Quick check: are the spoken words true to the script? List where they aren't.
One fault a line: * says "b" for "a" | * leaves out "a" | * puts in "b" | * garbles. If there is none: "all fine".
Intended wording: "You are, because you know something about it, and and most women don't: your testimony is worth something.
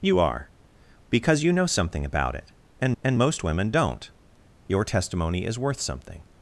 all fine